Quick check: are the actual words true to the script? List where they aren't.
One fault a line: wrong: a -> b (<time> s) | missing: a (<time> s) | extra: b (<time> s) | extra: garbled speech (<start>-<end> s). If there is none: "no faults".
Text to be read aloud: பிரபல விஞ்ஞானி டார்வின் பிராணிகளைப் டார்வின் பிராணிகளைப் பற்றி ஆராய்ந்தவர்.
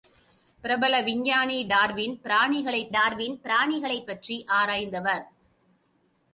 no faults